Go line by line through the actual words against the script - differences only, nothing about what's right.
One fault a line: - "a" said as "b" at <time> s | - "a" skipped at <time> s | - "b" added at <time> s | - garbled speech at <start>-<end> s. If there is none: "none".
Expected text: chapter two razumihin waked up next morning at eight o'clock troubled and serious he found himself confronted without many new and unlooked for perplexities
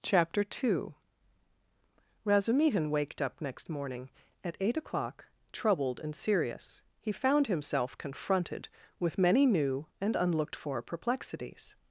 - "without" said as "with" at 9.0 s